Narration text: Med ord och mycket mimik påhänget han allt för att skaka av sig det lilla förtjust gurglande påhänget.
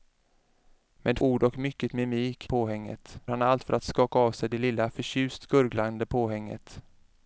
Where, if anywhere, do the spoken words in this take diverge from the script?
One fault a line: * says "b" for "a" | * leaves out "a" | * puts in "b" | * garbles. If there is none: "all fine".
all fine